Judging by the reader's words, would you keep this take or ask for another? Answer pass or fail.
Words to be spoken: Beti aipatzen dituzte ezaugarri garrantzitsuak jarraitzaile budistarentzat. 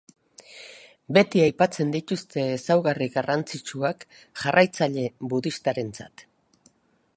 pass